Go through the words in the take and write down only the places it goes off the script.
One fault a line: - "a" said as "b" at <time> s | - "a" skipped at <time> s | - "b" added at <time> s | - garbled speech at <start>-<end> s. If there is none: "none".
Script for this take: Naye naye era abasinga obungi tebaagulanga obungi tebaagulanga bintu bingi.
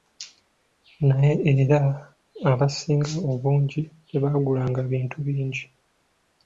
- "naye" skipped at 1.3 s
- "obungi tebaagulanga" skipped at 4.8 s